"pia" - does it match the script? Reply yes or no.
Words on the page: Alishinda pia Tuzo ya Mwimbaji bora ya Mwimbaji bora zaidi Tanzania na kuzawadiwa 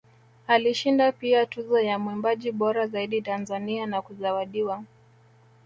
yes